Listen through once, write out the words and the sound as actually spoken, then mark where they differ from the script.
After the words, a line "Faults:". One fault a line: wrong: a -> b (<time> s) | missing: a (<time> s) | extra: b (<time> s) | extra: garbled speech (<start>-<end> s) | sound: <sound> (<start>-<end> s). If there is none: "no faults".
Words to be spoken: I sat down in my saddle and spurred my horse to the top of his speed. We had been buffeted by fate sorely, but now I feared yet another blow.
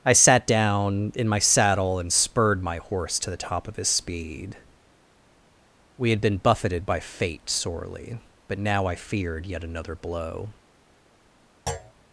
I sat down in my saddle and spurred my horse to the top of his speed. We had been buffeted by fate sorely, but now I feared yet another blow.
Faults:
sound: thud (11.7-11.9 s)